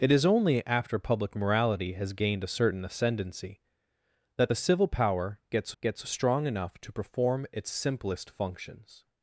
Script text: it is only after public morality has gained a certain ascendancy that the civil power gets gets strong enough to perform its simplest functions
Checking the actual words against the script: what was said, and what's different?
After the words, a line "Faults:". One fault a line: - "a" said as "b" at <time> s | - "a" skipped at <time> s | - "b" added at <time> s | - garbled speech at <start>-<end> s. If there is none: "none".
it is only after public morality has gained a certain ascendancy that the civil power gets gets strong enough to perform its simplest functions
Faults:
none